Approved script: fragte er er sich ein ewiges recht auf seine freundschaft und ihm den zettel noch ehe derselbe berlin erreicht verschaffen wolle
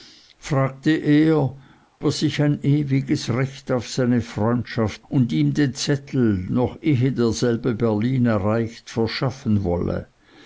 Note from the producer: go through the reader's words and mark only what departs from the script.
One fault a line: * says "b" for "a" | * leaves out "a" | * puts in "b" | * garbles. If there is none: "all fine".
all fine